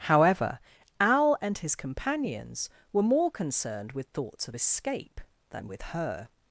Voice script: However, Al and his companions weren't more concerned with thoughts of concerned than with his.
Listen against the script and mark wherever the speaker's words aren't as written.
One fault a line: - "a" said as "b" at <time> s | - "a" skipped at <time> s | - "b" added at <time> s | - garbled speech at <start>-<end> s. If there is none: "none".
- "weren't" said as "were" at 2.9 s
- "concerned" said as "escape" at 4.5 s
- "his" said as "her" at 5.8 s